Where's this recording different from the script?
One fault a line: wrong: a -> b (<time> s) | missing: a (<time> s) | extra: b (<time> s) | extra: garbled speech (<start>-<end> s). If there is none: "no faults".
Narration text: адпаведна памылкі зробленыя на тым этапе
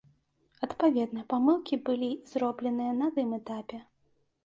extra: былі (1.9 s)